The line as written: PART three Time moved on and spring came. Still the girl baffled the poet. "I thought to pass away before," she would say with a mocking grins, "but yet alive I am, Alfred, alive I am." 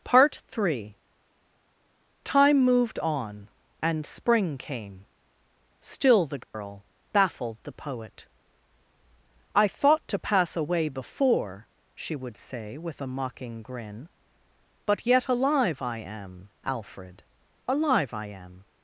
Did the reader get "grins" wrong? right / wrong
wrong